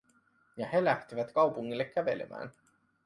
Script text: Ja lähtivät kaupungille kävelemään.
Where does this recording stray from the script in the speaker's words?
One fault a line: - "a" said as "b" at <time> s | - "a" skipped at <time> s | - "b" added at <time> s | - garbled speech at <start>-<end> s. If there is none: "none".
- "he" added at 0.7 s